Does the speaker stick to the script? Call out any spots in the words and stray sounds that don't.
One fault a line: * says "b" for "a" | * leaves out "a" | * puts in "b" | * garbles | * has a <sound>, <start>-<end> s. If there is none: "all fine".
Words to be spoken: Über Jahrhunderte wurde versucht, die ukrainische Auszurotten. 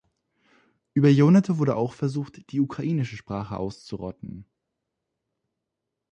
* puts in "auch"
* puts in "Sprache"